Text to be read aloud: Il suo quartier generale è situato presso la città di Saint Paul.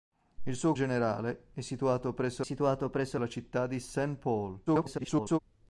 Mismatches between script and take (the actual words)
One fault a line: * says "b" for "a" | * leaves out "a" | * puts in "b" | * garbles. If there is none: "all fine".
* leaves out "quartier"
* puts in "situato presso"
* garbles